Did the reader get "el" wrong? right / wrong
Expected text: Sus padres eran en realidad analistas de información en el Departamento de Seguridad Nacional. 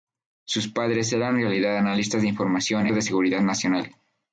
wrong